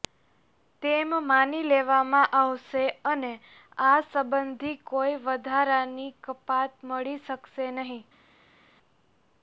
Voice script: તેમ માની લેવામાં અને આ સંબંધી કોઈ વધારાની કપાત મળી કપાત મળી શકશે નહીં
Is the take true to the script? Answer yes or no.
no